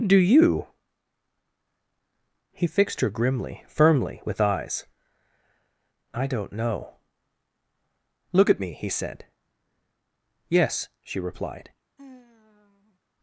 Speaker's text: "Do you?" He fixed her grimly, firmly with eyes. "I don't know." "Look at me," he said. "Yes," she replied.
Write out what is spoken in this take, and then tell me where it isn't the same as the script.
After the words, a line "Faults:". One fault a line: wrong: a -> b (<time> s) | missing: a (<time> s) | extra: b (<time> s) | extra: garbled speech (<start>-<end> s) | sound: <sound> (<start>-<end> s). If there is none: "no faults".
"Do you?" He fixed her grimly, firmly with eyes. "I don't know." "Look at me," he said. "Yes," she replied.
Faults:
sound: sigh (12.0-13.0 s)